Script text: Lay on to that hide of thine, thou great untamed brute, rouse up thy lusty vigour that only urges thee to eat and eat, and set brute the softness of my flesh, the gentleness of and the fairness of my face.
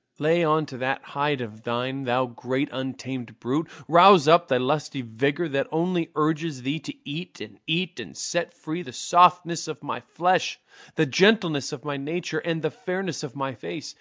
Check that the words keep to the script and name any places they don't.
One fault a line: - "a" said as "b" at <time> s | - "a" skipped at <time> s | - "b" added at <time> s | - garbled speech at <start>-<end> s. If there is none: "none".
- "brute" said as "free" at 8.5 s
- "my nature" added at 11.8 s